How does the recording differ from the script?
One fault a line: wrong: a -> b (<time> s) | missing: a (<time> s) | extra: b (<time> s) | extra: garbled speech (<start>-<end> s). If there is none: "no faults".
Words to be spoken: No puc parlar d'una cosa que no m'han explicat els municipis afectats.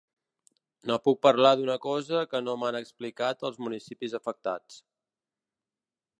no faults